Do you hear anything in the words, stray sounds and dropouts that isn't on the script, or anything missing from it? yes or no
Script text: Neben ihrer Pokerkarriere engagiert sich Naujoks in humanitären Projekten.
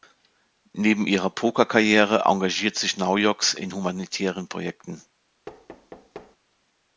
yes